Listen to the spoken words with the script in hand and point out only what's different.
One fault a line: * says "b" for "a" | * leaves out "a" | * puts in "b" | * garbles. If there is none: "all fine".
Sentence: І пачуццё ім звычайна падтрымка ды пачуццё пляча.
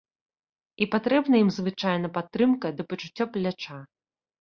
* says "патрэбна" for "пачуццё"